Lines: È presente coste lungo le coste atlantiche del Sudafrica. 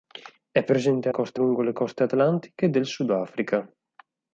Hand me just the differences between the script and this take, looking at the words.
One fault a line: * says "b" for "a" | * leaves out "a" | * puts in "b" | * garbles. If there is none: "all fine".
all fine